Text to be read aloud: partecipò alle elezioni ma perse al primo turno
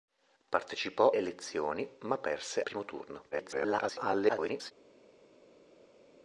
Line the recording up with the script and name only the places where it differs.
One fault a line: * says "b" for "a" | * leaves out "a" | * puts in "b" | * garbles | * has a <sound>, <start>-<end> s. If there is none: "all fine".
* leaves out "alle"
* leaves out "al"
* garbles